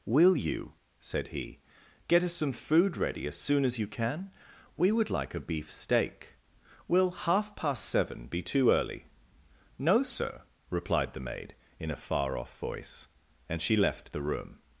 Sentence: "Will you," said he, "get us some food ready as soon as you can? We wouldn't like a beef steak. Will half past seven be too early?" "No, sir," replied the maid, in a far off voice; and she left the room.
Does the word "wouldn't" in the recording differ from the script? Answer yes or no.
yes